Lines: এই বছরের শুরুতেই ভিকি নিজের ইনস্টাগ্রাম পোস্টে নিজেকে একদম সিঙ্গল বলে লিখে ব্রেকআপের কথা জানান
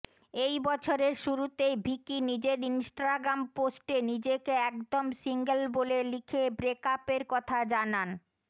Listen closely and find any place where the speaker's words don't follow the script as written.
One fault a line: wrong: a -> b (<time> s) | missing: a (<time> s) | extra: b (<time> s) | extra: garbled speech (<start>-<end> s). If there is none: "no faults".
no faults